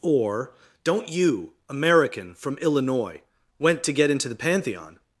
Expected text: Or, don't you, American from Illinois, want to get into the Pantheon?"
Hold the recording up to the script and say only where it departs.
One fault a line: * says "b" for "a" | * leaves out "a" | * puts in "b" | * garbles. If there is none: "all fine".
* says "went" for "want"